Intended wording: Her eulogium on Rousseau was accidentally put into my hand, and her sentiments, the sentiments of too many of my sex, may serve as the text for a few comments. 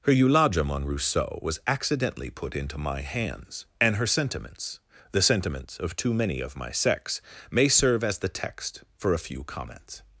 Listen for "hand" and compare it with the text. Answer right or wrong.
wrong